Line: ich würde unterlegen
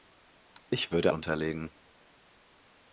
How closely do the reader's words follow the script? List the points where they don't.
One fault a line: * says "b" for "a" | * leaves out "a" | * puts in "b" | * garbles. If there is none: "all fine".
all fine